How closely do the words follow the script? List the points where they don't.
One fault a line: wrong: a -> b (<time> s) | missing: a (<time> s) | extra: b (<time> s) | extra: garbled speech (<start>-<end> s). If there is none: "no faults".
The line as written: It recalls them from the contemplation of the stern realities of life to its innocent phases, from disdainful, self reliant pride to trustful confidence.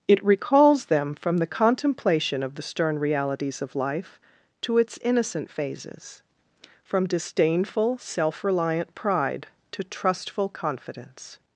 no faults